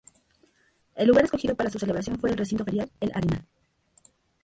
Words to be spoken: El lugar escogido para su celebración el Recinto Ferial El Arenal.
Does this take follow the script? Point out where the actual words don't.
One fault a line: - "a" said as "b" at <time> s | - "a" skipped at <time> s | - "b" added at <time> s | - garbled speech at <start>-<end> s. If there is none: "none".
- "fue" added at 2.2 s